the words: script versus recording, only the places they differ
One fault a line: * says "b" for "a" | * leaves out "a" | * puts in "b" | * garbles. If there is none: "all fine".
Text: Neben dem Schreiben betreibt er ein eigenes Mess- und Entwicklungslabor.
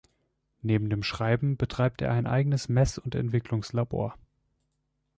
all fine